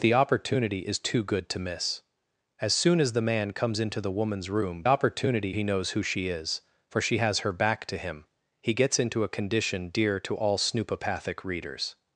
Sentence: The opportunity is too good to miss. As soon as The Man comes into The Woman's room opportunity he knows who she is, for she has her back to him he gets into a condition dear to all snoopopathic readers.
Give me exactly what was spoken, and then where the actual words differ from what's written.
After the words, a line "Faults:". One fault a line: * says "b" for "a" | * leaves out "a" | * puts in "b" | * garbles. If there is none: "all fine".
The opportunity is too good to miss. As soon as The Man comes into The Woman's room opportunity he knows who she is, for she has her back to him he gets into a condition dear to all snoopopathic readers.
Faults:
all fine